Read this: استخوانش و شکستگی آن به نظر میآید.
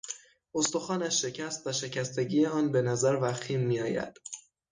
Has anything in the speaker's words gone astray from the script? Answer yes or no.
yes